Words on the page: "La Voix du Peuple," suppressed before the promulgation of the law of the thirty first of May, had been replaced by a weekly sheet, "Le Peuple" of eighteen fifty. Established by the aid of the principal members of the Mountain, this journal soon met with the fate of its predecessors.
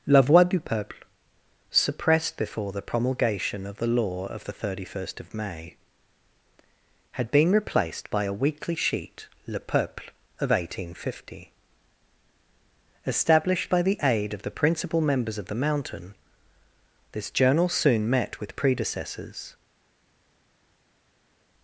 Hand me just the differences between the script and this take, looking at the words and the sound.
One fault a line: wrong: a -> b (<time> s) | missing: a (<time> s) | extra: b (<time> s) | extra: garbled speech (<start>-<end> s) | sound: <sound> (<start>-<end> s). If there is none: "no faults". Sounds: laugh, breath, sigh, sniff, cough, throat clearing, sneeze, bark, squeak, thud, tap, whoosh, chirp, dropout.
missing: the fate of its (18.5 s)